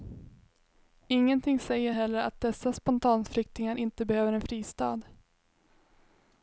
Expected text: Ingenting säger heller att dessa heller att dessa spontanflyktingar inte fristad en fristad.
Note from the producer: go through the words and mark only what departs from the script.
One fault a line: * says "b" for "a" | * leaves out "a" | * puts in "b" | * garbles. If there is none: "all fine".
* leaves out "heller att dessa"
* says "behöver" for "fristad"